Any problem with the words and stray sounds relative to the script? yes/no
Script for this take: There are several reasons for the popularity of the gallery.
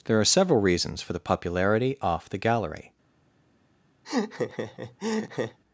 yes